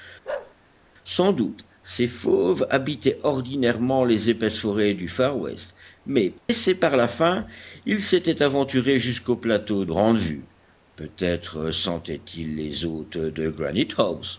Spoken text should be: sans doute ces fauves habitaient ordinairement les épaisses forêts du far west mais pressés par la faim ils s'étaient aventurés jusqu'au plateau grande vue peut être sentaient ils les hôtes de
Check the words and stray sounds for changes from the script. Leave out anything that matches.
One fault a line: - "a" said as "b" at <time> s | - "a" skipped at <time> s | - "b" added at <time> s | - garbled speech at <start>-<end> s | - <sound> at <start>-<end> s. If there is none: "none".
- bark at 0.2-0.5 s
- dropout at 6.4-6.5 s